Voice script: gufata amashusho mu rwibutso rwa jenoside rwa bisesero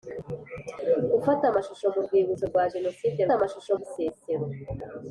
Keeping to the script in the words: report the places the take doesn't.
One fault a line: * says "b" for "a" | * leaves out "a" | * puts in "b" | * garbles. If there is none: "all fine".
* says "amashusho" for "rwa"